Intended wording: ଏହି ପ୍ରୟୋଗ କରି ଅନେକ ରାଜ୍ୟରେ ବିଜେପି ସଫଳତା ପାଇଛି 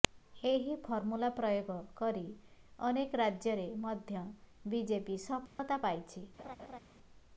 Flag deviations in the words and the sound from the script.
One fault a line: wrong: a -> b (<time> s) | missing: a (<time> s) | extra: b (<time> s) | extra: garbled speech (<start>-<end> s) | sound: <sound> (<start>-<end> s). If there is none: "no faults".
extra: ଫର୍ମୁଲା (0.8 s)
extra: ମଧ୍ୟ (3.8 s)
sound: dropout (5.5-5.6 s)
sound: laugh (6.4-6.8 s)